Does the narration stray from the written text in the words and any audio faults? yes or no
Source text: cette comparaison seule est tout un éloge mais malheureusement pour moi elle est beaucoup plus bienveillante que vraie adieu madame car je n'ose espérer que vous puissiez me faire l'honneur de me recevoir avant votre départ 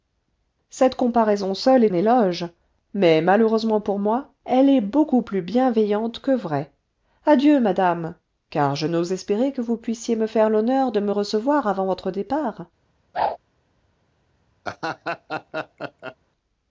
yes